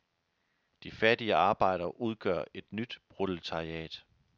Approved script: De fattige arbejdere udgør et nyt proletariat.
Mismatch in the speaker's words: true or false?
false